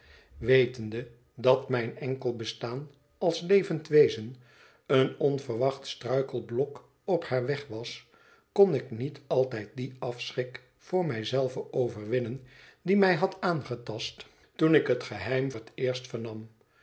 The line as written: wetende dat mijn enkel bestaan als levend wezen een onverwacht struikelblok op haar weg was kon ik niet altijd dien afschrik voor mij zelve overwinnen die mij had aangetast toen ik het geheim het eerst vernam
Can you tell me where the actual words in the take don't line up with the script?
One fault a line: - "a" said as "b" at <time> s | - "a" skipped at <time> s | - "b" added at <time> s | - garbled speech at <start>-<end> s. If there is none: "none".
none